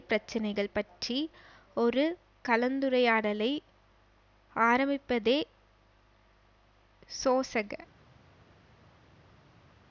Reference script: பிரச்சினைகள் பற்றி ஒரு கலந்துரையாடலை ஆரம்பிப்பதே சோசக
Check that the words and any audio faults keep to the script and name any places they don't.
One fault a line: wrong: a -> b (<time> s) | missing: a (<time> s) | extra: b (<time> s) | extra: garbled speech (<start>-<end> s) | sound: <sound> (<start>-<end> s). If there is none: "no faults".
no faults